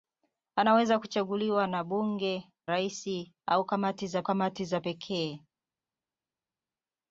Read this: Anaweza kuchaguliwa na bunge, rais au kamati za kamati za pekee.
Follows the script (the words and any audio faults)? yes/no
yes